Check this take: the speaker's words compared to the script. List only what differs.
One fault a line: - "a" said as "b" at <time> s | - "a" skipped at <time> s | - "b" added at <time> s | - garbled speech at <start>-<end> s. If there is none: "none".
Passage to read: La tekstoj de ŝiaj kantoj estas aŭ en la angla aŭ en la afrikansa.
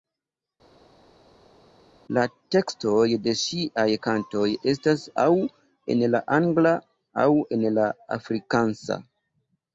none